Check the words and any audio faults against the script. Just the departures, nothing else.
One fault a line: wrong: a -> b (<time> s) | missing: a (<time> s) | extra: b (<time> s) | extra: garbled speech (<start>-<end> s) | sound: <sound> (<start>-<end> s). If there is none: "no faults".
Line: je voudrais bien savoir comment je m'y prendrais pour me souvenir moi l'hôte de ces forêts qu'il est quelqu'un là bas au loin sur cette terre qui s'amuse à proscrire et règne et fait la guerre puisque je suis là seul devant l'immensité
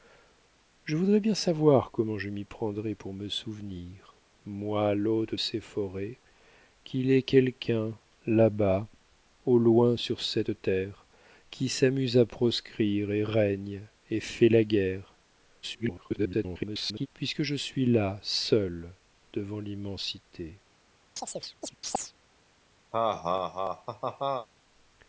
missing: de (5.3 s)
extra: garbled speech (15.6-17.1 s)
sound: chirp (21.2-22.1 s)
sound: laugh (22.9-24.5 s)